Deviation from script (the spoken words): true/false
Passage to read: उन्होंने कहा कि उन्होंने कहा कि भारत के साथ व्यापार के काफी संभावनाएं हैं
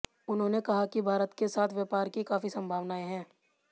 true